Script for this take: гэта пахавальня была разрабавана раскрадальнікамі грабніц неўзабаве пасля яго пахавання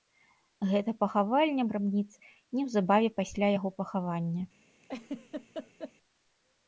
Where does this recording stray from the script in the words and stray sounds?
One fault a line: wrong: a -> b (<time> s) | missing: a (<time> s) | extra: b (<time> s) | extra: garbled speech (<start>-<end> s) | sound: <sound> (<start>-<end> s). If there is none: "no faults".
missing: была разрабавана раскрадальнікамі (1.6 s)
sound: laugh (4.8-5.9 s)